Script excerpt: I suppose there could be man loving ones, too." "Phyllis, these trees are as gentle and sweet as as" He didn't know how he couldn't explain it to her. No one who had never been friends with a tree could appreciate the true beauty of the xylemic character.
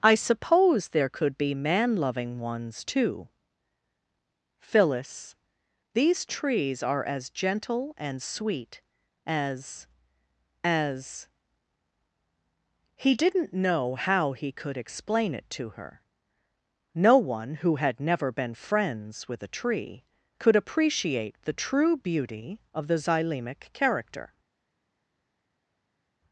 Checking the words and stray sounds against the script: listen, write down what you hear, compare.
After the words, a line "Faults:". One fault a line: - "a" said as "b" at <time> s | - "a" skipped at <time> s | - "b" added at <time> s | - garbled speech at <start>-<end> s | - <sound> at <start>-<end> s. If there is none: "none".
I suppose there could be man loving ones, too." "Phyllis, these trees are as gentle and sweet as as" He didn't know how he could explain it to her. No one who had never been friends with a tree could appreciate the true beauty of the xylemic character.
Faults:
- "couldn't" said as "could" at 14.5 s